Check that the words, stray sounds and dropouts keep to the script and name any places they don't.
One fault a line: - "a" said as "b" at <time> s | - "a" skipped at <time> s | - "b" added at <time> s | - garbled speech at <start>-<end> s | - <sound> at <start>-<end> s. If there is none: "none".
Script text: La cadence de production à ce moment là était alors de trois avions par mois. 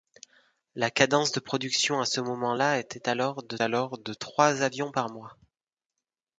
- "alors de" added at 3.6 s